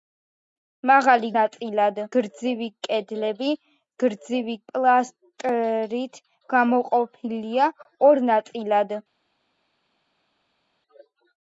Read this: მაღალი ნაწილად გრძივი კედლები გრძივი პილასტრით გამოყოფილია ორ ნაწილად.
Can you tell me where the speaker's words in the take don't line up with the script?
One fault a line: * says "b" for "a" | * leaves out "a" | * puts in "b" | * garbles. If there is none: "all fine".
all fine